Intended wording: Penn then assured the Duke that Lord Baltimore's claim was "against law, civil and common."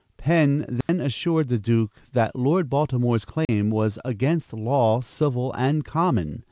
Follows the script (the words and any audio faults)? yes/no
no